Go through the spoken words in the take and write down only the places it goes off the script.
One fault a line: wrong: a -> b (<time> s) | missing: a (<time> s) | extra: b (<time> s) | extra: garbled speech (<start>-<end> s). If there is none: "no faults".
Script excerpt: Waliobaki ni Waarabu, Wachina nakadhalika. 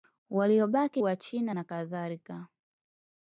missing: ni Waarabu (1.0 s)